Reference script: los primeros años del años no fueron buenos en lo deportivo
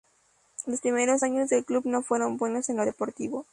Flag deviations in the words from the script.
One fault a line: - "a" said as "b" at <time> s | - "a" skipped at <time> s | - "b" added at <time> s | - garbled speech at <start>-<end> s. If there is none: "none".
- "años" said as "club" at 1.6 s